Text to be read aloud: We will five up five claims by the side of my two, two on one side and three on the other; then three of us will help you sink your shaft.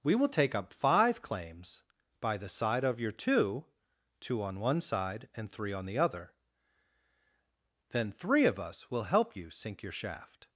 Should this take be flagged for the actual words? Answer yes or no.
yes